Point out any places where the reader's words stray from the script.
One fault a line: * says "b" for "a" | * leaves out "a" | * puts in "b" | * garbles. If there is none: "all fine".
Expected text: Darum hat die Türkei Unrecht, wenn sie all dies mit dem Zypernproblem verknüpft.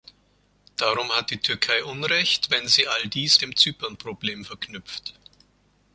* leaves out "mit"